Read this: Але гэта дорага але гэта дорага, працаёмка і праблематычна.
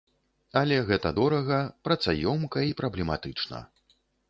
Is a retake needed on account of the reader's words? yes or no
yes